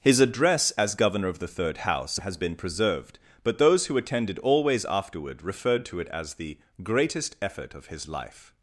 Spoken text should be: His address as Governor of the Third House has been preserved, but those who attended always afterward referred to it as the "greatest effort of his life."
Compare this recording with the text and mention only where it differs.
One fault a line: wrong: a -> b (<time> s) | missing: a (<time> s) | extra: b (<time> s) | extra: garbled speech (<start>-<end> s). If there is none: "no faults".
no faults